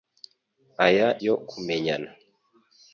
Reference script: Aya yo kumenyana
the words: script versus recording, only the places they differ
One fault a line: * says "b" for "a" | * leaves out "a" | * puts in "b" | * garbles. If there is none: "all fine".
all fine